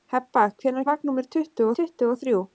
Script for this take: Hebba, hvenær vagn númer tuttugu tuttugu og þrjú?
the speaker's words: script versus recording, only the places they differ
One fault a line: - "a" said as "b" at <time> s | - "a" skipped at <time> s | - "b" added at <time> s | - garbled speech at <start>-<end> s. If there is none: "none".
none